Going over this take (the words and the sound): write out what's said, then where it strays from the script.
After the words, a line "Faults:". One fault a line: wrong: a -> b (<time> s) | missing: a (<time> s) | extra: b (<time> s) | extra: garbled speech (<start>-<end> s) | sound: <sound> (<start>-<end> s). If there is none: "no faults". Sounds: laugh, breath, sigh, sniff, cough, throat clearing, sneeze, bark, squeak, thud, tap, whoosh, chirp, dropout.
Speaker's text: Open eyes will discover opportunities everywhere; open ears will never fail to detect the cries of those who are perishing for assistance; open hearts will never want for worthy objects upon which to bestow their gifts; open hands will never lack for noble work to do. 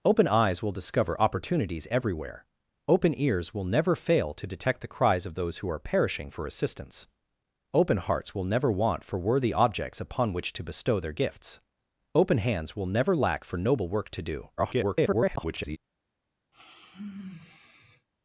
Open eyes will discover opportunities everywhere; open ears will never fail to detect the cries of those who are perishing for assistance; open hearts will never want for worthy objects upon which to bestow their gifts; open hands will never lack for noble work to do. [garbled]
Faults:
extra: garbled speech (14.6-15.8 s)
sound: sigh (16.5-18.1 s)